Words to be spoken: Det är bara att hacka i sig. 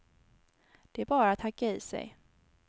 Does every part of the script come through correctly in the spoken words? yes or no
yes